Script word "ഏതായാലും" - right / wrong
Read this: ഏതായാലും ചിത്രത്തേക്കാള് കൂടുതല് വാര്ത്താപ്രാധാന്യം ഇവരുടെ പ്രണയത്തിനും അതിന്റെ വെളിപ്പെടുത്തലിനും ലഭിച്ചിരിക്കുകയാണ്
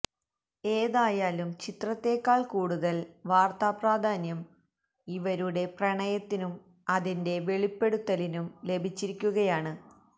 right